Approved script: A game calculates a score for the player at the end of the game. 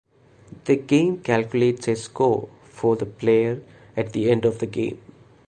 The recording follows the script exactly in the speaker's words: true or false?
false